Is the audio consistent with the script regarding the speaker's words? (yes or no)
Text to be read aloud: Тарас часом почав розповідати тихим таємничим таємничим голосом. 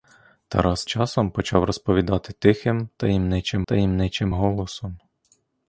yes